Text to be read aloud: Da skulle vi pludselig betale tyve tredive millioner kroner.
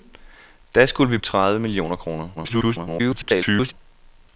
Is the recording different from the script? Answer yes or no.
yes